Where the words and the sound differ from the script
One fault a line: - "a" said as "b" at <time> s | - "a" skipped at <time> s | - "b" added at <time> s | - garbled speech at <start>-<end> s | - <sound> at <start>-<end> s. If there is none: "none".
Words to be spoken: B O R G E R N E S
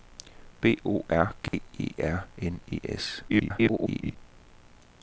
- dropout at 1.5-1.5 s
- garbled speech at 3.3-4.2 s